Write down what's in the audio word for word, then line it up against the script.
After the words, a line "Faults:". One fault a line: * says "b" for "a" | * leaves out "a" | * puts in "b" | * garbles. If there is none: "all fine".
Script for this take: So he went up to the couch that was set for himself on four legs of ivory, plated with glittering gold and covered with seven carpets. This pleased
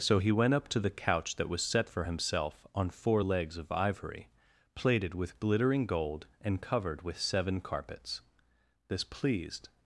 So he went up to the couch that was set for himself on four legs of ivory, plated with glittering gold and covered with seven carpets. This pleased
Faults:
all fine